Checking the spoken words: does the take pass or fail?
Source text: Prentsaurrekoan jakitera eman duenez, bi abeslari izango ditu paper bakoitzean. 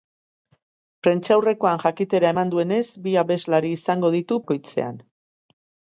fail